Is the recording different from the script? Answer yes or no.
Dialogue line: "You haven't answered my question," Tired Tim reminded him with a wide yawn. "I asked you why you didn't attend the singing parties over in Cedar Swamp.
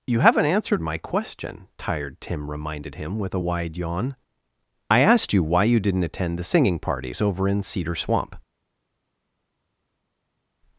no